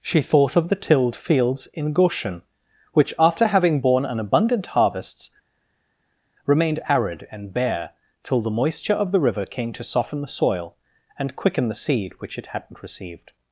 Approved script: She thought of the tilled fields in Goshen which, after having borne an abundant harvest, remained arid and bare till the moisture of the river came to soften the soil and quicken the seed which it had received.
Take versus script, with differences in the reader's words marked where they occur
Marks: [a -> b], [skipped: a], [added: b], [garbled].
She thought of the tilled fields in Goshen which, after having borne an abundant [harvest, -> harvests] remained arid and bare till the moisture of the river came to soften the soil and quicken the seed which it [had -> hadn't] received.